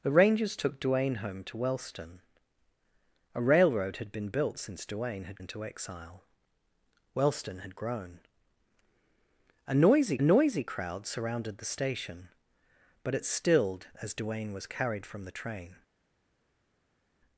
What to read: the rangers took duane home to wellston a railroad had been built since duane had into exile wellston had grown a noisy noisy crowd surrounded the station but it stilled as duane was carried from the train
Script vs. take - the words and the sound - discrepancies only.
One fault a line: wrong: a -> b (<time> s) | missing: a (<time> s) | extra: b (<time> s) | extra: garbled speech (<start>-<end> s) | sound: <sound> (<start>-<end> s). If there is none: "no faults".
no faults